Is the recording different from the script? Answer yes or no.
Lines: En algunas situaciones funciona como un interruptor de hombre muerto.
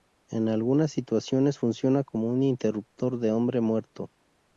no